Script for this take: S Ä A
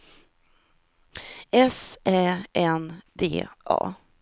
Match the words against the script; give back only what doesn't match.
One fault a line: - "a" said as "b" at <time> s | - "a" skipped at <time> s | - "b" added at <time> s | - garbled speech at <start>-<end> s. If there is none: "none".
- "N D" added at 2.8 s